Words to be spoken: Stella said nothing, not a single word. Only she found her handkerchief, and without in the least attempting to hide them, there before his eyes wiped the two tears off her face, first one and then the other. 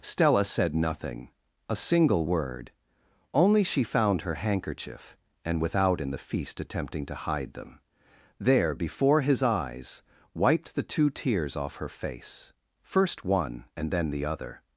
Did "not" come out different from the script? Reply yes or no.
yes